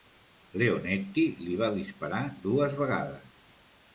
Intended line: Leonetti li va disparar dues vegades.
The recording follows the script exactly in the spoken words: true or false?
true